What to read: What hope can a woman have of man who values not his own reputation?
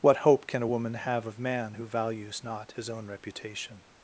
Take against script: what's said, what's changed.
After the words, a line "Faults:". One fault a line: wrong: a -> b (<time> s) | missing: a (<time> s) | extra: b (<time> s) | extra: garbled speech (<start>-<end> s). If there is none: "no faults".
What hope can a woman have of man who values not his own reputation?
Faults:
no faults